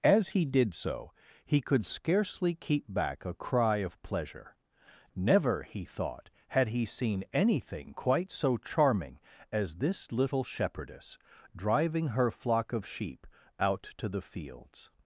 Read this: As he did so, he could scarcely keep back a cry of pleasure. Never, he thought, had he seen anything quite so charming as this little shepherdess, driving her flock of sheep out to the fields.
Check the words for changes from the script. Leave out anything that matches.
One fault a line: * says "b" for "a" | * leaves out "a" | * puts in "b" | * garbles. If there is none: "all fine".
all fine